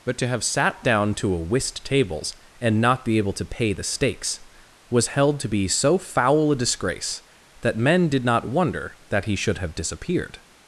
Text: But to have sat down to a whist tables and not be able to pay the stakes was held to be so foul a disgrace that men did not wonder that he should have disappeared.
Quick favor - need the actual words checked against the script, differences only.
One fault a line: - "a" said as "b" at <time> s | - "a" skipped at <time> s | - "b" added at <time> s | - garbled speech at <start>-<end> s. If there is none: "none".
none